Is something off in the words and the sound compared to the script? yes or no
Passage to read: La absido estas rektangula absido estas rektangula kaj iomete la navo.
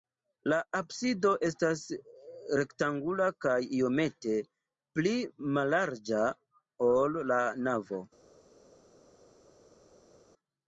yes